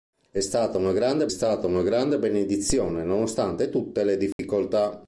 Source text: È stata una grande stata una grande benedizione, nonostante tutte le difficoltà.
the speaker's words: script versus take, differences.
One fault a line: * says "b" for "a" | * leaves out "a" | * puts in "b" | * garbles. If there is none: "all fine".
all fine